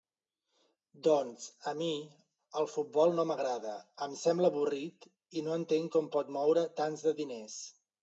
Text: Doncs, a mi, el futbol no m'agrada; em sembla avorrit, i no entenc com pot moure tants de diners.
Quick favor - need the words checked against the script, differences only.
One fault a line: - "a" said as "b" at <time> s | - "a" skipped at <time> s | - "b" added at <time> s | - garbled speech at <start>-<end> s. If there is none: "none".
none